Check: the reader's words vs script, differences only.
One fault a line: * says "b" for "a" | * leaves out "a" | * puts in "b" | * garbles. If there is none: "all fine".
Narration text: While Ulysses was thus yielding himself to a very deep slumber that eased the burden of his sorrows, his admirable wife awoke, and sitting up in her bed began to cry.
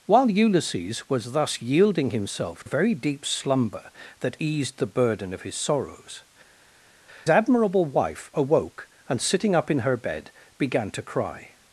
* leaves out "to"
* leaves out "his"